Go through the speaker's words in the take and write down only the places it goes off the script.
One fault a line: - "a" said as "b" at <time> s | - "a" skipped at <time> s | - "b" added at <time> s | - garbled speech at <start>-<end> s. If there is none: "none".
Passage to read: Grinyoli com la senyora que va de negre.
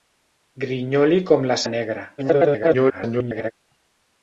- "senyora que va" skipped at 1.6 s
- garbled speech at 2.2-3.5 s